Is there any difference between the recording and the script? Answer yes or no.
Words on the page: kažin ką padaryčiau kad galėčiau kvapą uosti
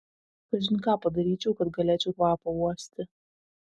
no